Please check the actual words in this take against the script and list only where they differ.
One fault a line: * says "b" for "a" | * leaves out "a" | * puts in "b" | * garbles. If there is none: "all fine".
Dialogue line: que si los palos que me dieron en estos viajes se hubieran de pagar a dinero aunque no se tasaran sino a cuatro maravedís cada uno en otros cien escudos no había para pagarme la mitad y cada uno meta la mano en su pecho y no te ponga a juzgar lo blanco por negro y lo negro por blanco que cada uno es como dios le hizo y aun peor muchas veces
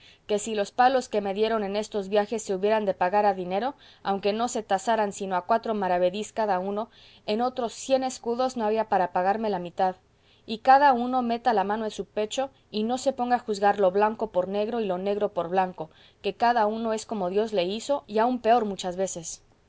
* says "se" for "te"